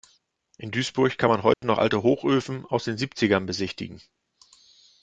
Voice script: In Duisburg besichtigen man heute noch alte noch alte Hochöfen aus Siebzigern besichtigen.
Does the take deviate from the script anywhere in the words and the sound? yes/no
yes